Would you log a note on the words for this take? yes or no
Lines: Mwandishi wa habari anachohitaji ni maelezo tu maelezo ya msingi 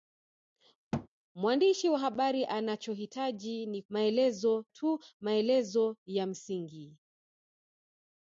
no